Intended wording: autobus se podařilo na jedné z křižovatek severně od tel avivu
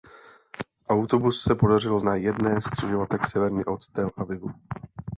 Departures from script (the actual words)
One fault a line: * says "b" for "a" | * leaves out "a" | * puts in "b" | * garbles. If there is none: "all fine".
all fine